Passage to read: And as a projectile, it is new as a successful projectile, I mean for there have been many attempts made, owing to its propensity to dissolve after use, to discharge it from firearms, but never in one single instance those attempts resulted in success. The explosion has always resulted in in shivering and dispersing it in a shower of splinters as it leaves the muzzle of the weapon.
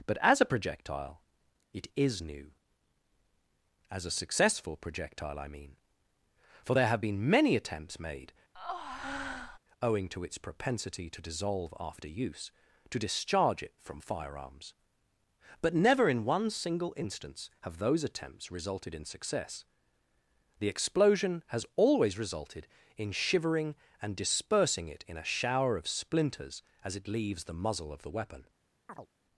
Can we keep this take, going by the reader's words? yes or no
no